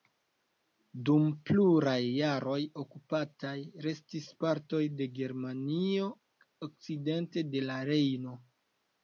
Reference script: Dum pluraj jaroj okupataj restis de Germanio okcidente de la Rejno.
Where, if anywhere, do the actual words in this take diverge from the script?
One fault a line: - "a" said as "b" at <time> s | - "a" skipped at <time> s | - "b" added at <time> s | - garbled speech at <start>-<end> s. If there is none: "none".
- "partoj" added at 4.5 s